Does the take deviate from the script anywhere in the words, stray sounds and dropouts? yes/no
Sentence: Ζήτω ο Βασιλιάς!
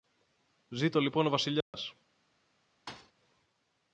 yes